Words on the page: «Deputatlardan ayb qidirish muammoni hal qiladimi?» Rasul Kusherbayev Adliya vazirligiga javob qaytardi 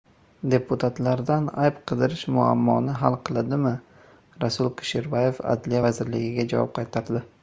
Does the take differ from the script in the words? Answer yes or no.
no